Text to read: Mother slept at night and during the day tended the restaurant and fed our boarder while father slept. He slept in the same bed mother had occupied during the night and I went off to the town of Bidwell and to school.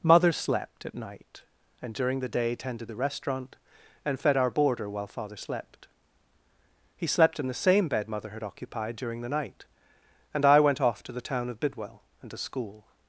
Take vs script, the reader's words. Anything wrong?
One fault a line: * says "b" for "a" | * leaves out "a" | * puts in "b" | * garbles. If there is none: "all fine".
all fine